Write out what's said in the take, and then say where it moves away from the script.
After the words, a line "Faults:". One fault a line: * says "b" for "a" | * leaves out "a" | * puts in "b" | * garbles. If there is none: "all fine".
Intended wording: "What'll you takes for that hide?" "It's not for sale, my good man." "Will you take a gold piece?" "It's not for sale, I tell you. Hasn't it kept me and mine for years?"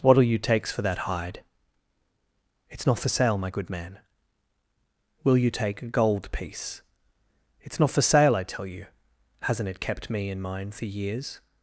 "What'll you takes for that hide?" "It's not for sale, my good man." "Will you take a gold piece?" "It's not for sale, I tell you. Hasn't it kept me and mine for years?"
Faults:
all fine